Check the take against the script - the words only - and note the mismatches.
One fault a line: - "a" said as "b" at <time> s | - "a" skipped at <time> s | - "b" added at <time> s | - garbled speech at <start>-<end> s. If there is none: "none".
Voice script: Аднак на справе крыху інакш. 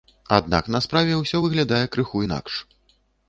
- "ўсё выглядае" added at 1.2 s